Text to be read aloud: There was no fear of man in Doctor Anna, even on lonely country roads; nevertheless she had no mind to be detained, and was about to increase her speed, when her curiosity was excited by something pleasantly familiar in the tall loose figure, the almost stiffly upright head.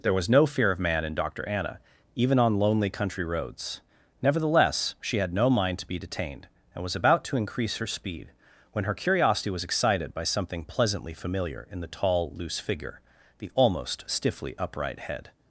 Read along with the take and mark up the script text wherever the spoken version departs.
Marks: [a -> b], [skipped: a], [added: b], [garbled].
There was no fear of man in Doctor Anna, even on lonely country roads; nevertheless she had no mind to be detained, and was about to increase her speed, when her curiosity was excited by something pleasantly familiar in the tall loose figure, the almost stiffly upright head.